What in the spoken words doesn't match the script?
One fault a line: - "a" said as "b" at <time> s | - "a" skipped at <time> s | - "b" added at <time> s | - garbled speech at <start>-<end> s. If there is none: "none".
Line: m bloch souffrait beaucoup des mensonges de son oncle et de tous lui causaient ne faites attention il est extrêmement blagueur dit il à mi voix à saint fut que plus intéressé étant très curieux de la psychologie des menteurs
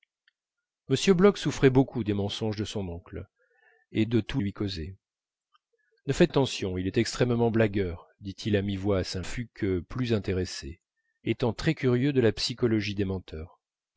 none